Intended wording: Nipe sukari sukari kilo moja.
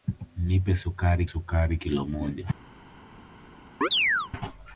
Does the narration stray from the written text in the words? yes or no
no